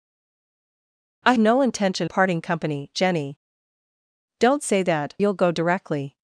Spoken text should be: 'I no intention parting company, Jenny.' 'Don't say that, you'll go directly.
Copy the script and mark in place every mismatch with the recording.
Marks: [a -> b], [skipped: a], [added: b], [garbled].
'I no intention parting company, Jenny.' 'Don't say that, you'll go directly.